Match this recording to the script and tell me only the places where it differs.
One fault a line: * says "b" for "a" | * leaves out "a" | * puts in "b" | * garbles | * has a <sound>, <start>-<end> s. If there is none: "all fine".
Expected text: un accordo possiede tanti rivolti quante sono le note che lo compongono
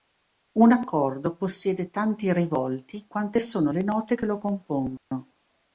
* has a dropout, 5.0-5.1 s